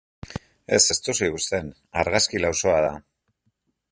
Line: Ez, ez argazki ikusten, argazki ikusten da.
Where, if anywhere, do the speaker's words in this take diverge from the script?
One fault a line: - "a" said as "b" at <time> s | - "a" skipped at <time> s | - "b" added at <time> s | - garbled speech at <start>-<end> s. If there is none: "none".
- "argazki" said as "duzu" at 1.1 s
- "ikusten" said as "lausoa" at 2.4 s